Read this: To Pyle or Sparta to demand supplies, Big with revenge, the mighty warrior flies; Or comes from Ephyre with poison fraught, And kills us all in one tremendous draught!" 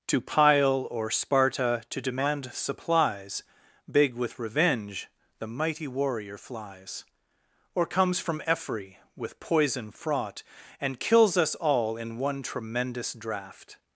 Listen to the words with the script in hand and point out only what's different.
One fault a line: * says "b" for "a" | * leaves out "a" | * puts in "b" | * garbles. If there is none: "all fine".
all fine